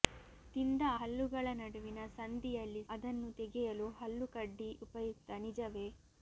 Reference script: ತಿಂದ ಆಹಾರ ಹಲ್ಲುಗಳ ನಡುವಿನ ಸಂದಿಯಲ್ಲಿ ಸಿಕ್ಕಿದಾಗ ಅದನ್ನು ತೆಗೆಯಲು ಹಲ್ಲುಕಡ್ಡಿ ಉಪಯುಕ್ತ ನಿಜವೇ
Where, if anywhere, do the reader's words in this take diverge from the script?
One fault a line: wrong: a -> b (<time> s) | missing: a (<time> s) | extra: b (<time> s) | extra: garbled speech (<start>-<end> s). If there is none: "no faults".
missing: ಆಹಾರ (0.8 s)
missing: ಸಿಕ್ಕಿದಾಗ (2.8 s)